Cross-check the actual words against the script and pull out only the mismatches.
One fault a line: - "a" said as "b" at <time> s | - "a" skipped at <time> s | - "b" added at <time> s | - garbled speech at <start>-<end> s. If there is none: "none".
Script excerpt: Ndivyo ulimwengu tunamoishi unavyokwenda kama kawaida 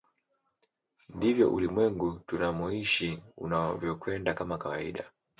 none